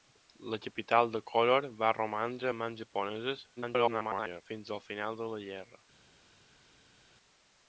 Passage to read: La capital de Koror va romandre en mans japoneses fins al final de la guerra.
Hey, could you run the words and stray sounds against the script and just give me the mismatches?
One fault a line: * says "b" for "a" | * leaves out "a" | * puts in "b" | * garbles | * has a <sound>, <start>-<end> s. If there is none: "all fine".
* garbles